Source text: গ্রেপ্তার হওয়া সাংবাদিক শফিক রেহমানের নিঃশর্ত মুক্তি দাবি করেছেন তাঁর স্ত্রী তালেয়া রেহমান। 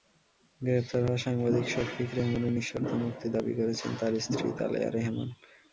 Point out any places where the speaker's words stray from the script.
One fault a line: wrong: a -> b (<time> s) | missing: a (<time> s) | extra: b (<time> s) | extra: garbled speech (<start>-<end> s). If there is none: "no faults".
no faults